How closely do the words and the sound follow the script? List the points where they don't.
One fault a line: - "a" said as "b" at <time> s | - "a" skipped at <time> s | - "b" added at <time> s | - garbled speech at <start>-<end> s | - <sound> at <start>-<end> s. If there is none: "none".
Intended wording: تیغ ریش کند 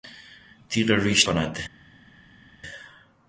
none